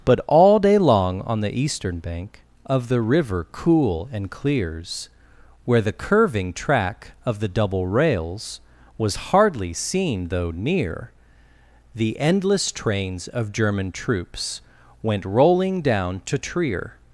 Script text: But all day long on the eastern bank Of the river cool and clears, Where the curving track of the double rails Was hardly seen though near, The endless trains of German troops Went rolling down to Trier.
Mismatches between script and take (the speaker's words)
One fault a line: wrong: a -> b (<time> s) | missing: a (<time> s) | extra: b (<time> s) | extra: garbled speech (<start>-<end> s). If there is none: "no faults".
no faults